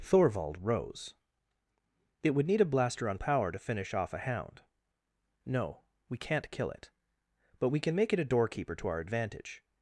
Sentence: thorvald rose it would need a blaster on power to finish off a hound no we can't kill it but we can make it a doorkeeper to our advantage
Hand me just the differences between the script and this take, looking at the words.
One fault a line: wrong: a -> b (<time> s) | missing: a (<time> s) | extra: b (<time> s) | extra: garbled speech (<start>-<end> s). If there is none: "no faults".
no faults